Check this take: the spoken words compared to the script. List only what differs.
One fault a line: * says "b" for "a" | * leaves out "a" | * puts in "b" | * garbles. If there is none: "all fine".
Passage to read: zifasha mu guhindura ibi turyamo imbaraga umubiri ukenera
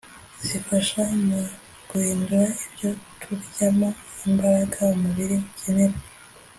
* says "ibyo" for "ibi"